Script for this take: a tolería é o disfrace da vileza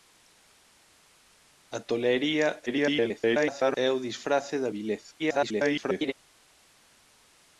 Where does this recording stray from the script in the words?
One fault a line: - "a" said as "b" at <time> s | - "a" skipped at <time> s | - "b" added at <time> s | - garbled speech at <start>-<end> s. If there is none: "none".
- garbled speech at 2.7-3.8 s
- garbled speech at 5.2-6.1 s